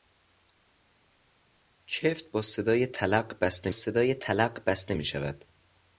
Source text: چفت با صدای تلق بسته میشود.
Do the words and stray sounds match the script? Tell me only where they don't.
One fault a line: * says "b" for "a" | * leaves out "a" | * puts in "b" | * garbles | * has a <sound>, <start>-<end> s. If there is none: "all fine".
* puts in "صدای تلق بسته"